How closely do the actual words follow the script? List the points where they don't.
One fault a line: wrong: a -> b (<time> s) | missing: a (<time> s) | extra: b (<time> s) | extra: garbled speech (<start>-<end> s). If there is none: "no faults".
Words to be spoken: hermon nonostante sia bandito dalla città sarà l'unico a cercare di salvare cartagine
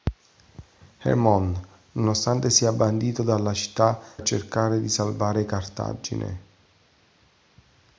missing: sarà l'unico (4.0 s)